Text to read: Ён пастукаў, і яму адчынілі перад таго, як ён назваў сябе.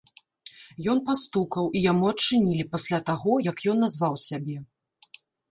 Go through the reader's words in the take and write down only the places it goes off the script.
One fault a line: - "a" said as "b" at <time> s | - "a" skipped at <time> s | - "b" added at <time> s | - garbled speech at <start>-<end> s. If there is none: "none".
- "перад" said as "пасля" at 2.8 s